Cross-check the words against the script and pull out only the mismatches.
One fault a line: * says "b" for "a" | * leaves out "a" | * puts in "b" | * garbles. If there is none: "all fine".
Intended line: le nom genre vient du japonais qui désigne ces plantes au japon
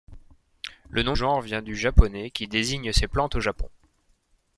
all fine